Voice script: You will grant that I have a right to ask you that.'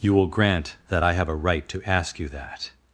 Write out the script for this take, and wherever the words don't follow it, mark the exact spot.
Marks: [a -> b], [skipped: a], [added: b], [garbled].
You will grant that I have a right to ask you that.'